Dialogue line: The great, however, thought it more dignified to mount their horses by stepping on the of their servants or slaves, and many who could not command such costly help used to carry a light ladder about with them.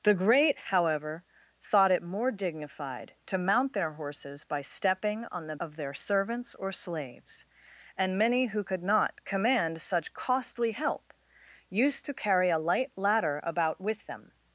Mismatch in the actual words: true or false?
false